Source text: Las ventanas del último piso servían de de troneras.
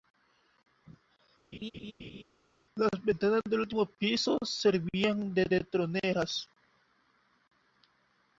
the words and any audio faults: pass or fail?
fail